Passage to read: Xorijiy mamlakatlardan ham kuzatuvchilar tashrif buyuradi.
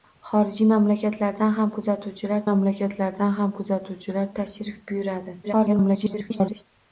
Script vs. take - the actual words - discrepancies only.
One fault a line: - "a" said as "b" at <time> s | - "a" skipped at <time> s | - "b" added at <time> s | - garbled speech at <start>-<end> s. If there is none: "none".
- "mamlakatlardan ham kuzatuvchilar" added at 2.4 s
- garbled speech at 5.4-6.6 s